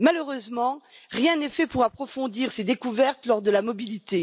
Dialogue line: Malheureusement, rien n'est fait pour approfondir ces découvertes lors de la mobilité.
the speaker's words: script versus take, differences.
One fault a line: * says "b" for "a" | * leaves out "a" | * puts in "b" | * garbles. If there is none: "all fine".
all fine